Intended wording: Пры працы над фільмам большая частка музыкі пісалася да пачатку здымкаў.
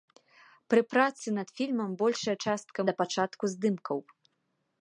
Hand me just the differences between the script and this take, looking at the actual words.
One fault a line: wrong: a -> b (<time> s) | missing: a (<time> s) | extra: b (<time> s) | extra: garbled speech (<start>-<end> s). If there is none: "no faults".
missing: музыкі пісалася (2.8 s)